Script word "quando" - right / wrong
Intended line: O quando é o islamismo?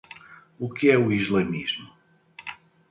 wrong